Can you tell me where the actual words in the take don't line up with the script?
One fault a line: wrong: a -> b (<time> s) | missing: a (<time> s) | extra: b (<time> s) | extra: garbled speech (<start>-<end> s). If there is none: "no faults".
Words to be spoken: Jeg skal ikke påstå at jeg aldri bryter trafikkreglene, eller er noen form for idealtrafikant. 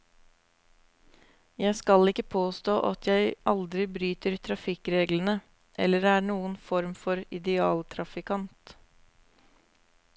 no faults